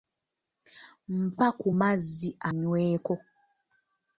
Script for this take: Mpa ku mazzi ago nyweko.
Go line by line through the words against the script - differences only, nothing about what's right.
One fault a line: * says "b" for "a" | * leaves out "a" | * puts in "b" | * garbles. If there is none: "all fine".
* leaves out "ago"